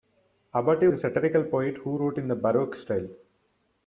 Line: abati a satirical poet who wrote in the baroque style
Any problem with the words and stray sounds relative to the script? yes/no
no